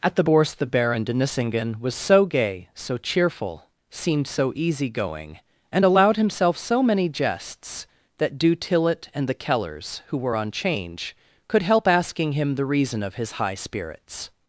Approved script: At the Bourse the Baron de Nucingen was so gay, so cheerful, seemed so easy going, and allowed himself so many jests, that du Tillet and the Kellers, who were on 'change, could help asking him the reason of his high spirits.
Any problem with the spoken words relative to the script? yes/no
no